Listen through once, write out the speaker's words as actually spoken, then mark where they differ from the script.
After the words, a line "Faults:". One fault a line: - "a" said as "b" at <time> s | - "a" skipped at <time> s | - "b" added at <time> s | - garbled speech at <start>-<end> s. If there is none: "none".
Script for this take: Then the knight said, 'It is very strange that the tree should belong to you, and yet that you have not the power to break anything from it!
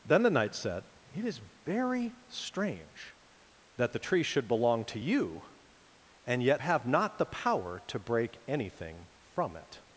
Then the knight said, 'It is very strange that the tree should belong to you, and yet have not the power to break anything from it!
Faults:
- "that you" skipped at 6.6 s